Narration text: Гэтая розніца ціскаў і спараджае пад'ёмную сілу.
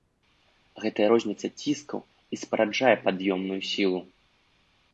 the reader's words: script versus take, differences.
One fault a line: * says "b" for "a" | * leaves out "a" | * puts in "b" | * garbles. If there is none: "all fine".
all fine